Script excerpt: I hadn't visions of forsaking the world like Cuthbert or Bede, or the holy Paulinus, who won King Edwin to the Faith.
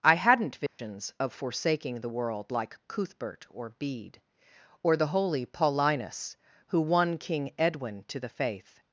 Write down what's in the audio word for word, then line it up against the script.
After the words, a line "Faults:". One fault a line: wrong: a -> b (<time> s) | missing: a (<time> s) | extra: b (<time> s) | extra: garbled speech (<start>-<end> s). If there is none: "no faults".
I hadn't visions of forsaking the world like Cuthbert or Bede, or the holy Paulinus, who won King Edwin to the Faith.
Faults:
no faults